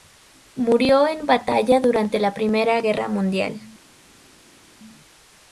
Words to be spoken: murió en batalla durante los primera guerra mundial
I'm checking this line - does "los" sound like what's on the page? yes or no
no